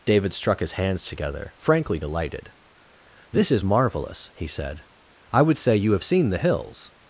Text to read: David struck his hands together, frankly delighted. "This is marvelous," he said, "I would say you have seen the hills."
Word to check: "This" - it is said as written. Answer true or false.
true